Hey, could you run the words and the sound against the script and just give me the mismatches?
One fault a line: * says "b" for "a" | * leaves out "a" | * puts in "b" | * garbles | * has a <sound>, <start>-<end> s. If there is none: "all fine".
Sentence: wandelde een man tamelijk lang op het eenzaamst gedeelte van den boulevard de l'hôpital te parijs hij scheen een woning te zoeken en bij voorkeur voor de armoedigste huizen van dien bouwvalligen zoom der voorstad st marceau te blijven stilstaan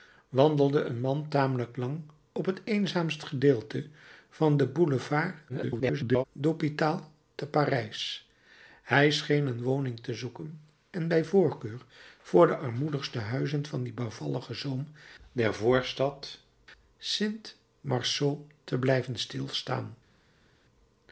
* garbles